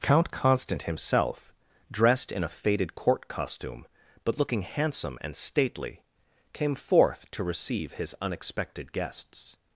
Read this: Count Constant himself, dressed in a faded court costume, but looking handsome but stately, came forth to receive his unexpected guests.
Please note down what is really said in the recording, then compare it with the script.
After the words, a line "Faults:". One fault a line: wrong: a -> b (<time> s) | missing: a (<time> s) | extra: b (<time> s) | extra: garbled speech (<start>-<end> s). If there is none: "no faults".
Count Constant himself, dressed in a faded court costume, but looking handsome and stately, came forth to receive his unexpected guests.
Faults:
wrong: but -> and (5.2 s)